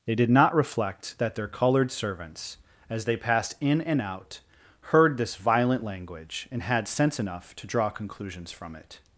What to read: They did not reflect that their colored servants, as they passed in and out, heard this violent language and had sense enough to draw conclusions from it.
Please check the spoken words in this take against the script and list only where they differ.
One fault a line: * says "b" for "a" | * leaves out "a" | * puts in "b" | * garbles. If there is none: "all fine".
all fine